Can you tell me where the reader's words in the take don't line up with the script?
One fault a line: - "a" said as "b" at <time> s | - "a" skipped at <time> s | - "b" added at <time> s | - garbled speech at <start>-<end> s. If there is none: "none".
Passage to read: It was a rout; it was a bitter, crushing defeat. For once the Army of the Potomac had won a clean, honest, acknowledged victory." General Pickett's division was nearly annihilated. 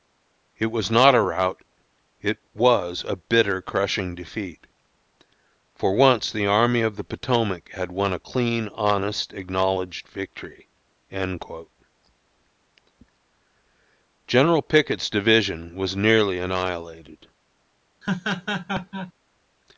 - "not" added at 0.9 s